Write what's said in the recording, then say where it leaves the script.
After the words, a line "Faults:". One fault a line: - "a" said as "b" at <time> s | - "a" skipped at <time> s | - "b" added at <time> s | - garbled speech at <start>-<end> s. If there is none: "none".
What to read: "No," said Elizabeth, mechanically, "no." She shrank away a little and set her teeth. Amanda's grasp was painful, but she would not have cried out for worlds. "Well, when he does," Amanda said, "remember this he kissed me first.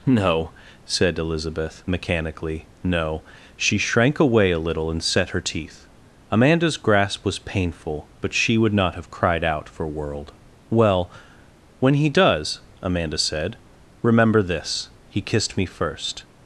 "No," said Elizabeth, mechanically, "no." She shrank away a little and set her teeth. Amanda's grasp was painful, but she would not have cried out for world. "Well, when he does," Amanda said, "remember this he kissed me first.
Faults:
- "worlds" said as "world" at 9.9 s